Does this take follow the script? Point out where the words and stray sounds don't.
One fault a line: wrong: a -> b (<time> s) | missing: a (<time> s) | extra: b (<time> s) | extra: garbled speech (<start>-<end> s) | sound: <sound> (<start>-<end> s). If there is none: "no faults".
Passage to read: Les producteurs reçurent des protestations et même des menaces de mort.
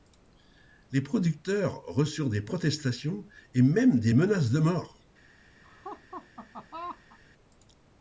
sound: laugh (5.6-7.2 s)